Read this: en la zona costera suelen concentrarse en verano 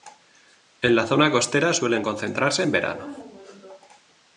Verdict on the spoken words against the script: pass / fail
pass